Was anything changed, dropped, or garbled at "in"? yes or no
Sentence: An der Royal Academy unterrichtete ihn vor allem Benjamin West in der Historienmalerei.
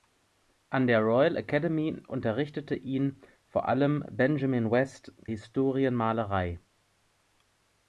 yes